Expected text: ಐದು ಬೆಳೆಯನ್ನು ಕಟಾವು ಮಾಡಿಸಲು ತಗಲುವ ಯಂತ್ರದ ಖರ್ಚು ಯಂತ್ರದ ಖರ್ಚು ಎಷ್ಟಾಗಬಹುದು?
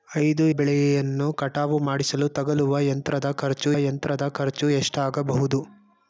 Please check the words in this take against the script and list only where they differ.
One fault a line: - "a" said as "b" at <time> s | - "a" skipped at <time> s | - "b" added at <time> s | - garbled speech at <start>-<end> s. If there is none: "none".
none